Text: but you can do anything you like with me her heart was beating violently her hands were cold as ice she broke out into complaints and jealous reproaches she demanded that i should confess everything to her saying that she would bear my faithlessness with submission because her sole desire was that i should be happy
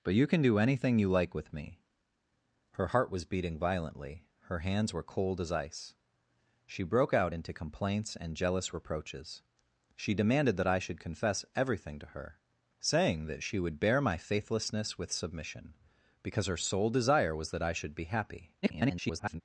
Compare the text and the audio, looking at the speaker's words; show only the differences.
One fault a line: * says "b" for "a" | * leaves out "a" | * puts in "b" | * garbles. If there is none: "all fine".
* garbles